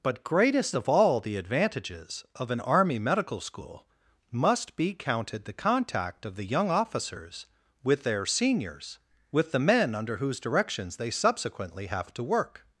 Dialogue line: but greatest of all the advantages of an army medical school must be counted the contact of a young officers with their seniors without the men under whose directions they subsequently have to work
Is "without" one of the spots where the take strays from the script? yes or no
yes